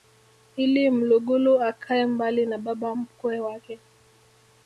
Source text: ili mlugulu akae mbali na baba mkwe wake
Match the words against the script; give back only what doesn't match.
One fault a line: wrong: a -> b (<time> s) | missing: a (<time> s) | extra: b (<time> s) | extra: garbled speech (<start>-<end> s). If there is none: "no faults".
no faults